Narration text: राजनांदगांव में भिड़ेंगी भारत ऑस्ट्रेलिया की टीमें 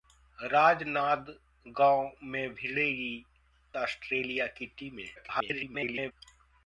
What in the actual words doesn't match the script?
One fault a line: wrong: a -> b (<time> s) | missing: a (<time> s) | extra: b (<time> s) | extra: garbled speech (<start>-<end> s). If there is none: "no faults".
missing: भारत (3.2 s)
extra: garbled speech (5.2-6.1 s)